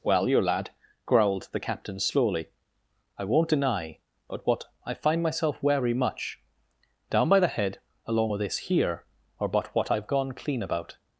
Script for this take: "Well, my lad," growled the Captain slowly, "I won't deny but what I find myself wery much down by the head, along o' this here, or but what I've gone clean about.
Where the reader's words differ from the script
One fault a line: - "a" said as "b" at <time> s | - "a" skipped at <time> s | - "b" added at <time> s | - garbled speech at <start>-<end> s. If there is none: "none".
- "my" said as "your" at 0.3 s